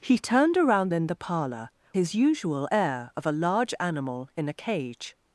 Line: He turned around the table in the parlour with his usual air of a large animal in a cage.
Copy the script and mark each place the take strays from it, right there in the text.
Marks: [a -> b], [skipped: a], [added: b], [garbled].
He turned around [skipped: the table] in the parlour [skipped: with] his usual air of a large animal in a cage.